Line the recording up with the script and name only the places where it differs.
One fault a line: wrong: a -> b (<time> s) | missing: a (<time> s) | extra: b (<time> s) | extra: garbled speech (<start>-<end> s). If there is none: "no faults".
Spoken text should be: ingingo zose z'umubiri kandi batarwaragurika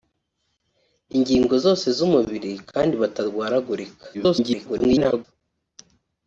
extra: garbled speech (4.1-5.2 s)